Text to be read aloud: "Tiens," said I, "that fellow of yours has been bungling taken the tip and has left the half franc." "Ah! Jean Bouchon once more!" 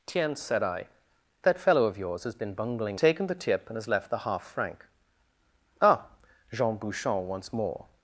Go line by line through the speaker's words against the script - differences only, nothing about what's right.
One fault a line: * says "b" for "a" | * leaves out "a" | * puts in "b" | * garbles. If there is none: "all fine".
all fine